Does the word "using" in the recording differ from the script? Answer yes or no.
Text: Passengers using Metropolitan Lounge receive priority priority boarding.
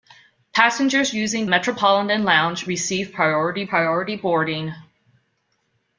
no